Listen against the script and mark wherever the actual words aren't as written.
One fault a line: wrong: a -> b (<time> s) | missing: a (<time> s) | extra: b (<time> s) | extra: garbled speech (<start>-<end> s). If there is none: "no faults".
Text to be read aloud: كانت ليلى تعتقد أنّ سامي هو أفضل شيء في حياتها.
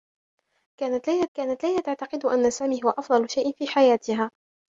extra: كانت ليلى (1.4 s)